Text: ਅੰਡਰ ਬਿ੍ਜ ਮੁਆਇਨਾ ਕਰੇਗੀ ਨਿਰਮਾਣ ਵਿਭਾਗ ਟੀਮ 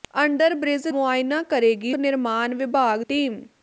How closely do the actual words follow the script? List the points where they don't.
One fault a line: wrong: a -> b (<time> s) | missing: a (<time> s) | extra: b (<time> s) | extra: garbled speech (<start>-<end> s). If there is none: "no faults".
no faults